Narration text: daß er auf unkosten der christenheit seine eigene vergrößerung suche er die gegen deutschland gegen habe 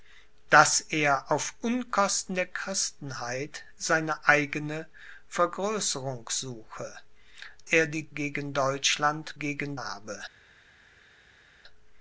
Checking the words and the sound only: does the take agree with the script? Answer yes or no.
yes